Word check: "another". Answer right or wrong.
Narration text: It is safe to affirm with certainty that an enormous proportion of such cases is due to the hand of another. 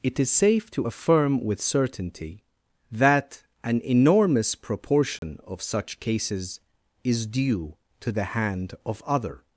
wrong